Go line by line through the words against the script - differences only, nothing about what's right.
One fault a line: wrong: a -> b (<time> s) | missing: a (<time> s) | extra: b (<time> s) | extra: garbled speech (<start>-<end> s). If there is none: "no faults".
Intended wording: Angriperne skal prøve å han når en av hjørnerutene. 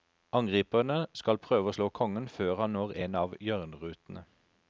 extra: slå kongen før (1.8 s)